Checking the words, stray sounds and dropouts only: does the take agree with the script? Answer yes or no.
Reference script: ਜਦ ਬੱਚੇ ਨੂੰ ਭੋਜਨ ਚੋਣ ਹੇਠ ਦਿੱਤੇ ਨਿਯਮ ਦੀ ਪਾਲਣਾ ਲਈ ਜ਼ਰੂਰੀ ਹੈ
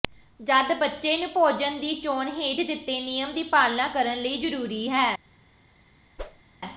no